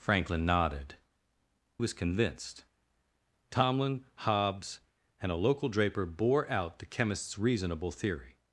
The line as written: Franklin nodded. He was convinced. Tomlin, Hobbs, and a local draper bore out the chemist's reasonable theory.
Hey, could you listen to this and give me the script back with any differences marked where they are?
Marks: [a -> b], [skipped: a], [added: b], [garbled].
Franklin nodded. [skipped: He] was convinced. Tomlin, Hobbs, and a local draper bore out the chemist's reasonable theory.